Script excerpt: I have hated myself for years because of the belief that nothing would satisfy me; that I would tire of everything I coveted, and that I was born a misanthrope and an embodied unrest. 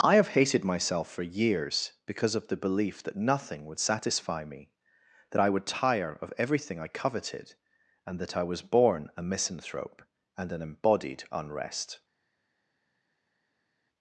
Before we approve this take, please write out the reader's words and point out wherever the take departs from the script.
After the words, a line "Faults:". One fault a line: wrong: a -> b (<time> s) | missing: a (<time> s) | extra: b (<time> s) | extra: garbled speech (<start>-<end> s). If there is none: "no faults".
I have hated myself for years because of the belief that nothing would satisfy me; that I would tire of everything I coveted, and that I was born a misanthrope and an embodied unrest.
Faults:
no faults